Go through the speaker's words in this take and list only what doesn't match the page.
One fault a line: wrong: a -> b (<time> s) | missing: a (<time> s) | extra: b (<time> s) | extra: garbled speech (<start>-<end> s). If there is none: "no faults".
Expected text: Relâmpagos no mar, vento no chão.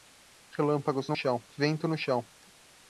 wrong: mar -> chão (1.1 s)